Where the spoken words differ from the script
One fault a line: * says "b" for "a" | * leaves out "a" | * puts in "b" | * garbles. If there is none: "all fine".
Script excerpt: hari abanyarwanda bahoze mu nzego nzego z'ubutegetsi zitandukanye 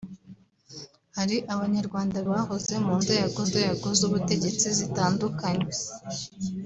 all fine